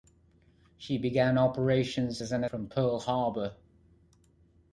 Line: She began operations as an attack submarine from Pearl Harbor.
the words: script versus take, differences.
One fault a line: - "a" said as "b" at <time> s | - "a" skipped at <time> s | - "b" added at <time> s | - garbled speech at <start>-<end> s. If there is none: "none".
- "attack submarine" skipped at 2.4 s